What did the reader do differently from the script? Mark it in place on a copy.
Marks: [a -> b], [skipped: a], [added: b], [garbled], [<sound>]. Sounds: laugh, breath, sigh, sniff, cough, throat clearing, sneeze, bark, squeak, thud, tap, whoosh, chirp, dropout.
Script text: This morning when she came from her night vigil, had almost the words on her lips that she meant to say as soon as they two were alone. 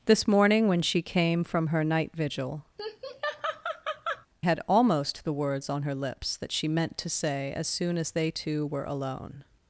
This morning when she came from her night vigil, [laugh] had almost the words on her lips that she meant to say as soon as they two were alone.